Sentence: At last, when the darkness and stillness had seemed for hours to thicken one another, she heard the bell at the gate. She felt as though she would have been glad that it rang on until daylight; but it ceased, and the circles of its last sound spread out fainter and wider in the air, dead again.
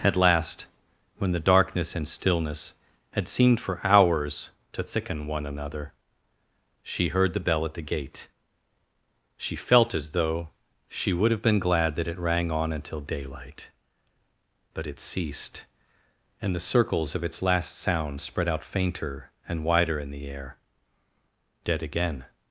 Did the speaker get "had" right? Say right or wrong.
right